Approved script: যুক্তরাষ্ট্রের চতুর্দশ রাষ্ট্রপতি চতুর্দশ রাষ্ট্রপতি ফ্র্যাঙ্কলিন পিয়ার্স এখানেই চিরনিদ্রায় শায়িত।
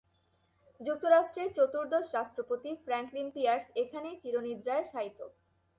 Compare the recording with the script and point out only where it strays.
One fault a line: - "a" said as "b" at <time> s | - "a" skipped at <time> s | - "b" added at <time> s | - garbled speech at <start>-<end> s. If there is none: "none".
- "চতুর্দশ রাষ্ট্রপতি" skipped at 2.7 s